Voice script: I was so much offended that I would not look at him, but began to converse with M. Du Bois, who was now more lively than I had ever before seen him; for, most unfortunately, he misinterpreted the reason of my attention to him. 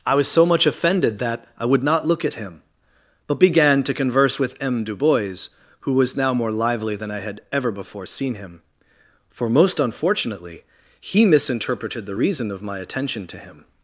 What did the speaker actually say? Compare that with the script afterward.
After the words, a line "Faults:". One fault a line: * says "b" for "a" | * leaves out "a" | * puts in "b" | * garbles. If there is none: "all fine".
I was so much offended that I would not look at him, but began to converse with M. Du Bois, who was now more lively than I had ever before seen him; for, most unfortunately, he misinterpreted the reason of my attention to him.
Faults:
all fine